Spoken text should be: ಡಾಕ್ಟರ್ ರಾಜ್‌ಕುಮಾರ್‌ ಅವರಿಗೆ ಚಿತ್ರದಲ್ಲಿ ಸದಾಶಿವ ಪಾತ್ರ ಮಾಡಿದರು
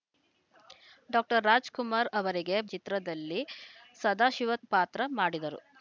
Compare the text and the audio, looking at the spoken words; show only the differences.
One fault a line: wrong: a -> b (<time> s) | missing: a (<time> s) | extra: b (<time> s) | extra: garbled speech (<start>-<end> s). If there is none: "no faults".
no faults